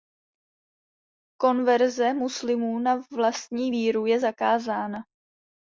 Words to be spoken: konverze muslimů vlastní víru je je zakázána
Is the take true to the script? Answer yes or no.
no